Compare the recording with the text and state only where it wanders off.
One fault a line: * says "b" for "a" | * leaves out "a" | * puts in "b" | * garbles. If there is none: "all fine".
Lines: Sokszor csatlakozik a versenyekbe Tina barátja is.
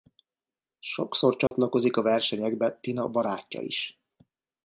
all fine